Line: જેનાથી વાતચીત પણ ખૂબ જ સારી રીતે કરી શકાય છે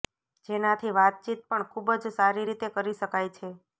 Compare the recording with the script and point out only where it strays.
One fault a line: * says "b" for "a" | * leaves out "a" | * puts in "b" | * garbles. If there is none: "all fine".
all fine